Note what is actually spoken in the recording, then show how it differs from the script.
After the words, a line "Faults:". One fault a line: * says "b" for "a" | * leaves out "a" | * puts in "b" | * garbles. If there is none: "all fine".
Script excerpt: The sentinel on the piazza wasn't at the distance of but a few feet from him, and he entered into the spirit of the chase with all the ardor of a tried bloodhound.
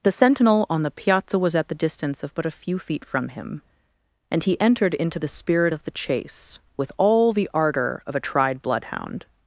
The sentinel on the piazza was at the distance of but a few feet from him, and he entered into the spirit of the chase with all the ardor of a tried bloodhound.
Faults:
* says "was" for "wasn't"